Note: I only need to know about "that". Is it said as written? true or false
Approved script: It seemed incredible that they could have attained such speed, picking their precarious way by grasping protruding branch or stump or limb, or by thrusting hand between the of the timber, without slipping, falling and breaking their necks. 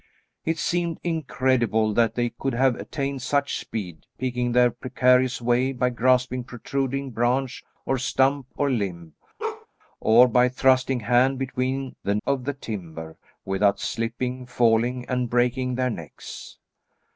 true